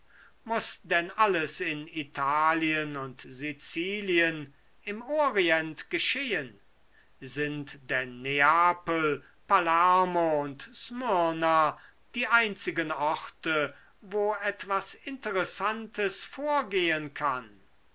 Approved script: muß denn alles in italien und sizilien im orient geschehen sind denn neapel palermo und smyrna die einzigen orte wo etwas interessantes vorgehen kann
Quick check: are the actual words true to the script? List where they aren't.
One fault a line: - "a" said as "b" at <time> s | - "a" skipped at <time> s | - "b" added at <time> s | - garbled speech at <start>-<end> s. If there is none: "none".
none